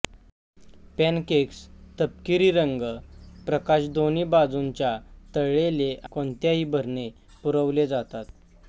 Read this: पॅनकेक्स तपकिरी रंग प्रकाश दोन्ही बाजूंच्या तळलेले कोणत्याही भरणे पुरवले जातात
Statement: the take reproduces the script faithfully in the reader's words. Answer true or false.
true